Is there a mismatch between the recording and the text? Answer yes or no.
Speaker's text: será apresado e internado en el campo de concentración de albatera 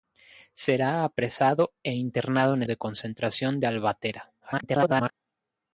yes